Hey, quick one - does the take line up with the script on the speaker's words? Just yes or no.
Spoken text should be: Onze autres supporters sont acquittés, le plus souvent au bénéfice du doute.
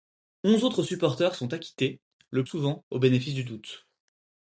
no